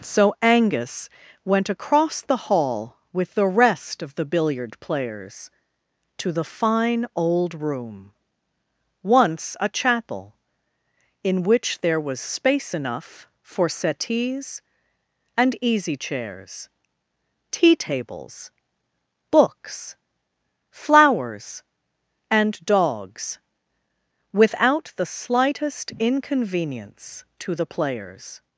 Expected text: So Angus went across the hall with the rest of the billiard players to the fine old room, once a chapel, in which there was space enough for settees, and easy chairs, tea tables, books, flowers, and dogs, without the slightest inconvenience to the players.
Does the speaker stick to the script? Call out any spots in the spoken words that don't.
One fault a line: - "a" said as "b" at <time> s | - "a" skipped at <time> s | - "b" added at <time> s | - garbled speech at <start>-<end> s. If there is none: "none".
none